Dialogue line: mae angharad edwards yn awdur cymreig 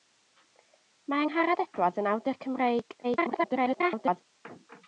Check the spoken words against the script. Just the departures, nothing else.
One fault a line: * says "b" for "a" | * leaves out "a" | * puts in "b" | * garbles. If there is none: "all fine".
* garbles